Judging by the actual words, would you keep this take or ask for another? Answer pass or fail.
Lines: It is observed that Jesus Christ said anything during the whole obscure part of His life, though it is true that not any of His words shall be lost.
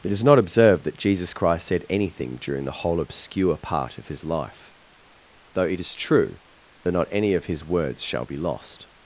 fail